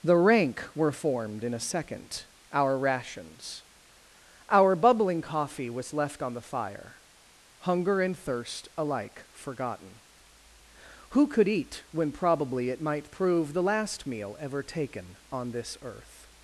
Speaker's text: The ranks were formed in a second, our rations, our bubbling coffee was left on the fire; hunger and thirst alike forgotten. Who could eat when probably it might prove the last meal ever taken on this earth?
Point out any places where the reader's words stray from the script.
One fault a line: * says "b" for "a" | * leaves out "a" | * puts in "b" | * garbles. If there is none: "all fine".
* says "rank" for "ranks"